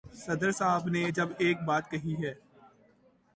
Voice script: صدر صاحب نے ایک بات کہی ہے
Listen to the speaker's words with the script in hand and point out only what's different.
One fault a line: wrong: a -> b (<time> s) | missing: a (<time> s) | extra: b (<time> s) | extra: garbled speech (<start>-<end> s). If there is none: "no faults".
extra: جب (1.1 s)